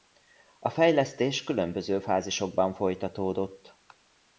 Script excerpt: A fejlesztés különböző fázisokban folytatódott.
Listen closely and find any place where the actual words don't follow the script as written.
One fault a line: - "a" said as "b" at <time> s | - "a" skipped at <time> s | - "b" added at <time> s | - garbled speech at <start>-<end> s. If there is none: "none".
none